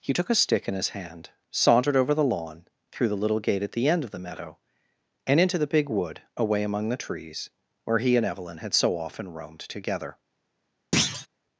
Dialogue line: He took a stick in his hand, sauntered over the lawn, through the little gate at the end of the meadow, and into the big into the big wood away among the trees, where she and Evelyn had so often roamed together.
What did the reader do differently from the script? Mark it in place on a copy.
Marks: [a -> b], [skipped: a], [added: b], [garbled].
He took a stick in his hand, sauntered over the lawn, through the little gate at the end of the meadow, and into the big [skipped: into the big] wood away among the trees, where [she -> he] and Evelyn had so often roamed together.